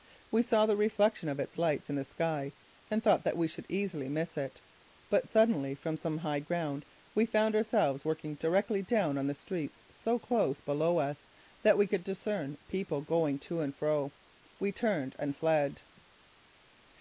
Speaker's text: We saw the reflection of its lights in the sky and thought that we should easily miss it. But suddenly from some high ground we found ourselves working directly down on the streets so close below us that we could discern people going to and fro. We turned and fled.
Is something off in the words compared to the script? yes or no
no